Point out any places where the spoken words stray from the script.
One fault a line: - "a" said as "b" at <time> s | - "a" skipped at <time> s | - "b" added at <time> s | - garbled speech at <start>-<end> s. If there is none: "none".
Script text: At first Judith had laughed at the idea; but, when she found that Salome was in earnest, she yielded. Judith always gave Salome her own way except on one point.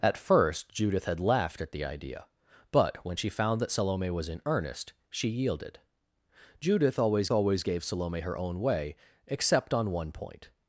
- "always" added at 7.3 s